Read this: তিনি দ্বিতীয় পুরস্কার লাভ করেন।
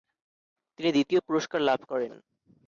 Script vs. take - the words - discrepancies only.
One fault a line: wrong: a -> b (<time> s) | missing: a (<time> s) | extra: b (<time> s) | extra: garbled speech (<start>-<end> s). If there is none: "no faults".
no faults